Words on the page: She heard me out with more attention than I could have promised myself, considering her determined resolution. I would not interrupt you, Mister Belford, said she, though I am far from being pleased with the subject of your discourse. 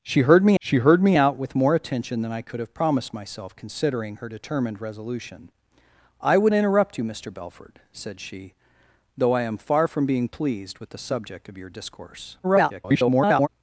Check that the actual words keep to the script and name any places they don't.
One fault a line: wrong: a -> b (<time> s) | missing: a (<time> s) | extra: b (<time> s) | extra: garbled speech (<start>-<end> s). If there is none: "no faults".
extra: she heard me (0.6 s)
missing: not (6.5 s)
extra: garbled speech (12.4-13.5 s)